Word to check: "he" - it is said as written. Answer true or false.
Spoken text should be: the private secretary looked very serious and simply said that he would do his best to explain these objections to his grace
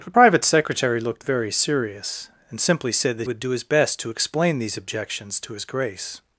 false